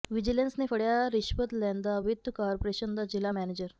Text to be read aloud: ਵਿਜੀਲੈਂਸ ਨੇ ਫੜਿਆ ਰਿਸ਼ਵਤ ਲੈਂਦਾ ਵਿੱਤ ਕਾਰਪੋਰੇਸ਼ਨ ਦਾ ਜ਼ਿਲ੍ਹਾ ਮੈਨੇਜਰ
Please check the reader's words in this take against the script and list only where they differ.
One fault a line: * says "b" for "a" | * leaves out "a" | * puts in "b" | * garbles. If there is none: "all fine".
all fine